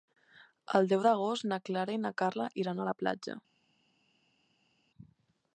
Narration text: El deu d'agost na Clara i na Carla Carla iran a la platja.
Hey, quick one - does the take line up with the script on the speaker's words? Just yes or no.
no